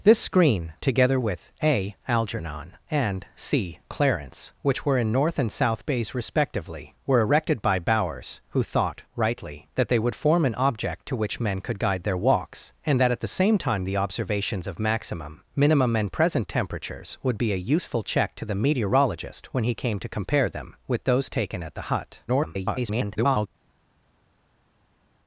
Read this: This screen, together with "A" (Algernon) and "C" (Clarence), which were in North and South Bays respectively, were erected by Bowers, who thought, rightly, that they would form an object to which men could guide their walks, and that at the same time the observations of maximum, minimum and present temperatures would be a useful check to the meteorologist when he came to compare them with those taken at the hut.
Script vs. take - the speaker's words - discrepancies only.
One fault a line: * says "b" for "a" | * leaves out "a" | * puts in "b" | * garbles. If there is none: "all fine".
* garbles